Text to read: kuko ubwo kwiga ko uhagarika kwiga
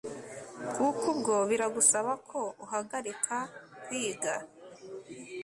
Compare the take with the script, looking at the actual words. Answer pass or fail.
fail